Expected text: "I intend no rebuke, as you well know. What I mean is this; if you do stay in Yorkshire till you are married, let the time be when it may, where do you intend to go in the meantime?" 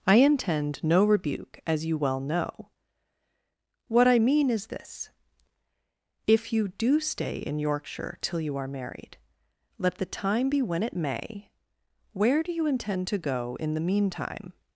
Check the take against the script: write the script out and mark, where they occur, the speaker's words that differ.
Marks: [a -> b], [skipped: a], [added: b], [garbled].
"I intend no rebuke, as you well know. What I mean is this; if you do stay in Yorkshire till you are married, let the time be when it may, where do you intend to go in the meantime?"